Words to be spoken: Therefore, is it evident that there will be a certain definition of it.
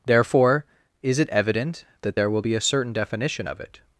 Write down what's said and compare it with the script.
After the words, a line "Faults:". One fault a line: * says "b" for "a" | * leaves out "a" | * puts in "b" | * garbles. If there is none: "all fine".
Therefore, is it evident that there will be a certain definition of it.
Faults:
all fine